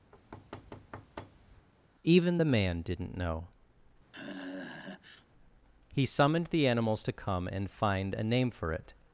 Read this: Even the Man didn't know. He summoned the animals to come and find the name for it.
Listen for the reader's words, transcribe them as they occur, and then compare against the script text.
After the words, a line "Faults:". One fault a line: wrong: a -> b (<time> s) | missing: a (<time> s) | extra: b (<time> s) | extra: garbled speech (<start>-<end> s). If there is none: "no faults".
Even the Man didn't know. He summoned the animals to come and find a name for it.
Faults:
wrong: the -> a (8.1 s)